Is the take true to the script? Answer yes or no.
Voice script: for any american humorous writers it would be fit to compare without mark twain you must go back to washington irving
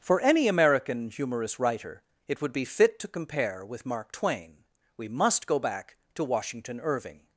no